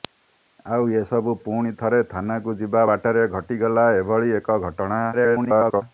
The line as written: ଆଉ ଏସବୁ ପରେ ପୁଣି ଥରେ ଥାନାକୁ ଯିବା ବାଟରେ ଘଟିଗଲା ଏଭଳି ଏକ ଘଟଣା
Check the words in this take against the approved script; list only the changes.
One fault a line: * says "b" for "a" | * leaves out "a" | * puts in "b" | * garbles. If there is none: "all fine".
* leaves out "ପରେ"
* garbles